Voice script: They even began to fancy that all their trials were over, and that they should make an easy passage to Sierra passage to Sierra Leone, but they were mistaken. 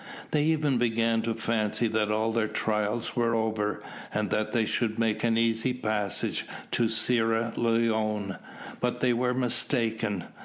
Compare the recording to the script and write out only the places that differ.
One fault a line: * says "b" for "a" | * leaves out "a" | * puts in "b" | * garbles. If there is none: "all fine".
* leaves out "passage to Sierra"